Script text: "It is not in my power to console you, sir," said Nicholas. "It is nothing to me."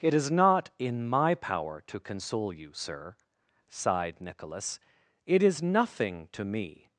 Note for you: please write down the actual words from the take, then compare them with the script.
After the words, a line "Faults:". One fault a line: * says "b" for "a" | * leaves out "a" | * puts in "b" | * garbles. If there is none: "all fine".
"It is not in my power to console you, sir," sighed Nicholas. "It is nothing to me."
Faults:
* says "sighed" for "said"